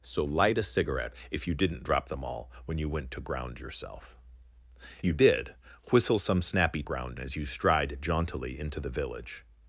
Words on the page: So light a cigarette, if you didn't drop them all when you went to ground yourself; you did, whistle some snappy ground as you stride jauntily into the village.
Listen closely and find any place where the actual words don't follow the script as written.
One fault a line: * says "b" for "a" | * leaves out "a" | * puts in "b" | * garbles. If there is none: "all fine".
all fine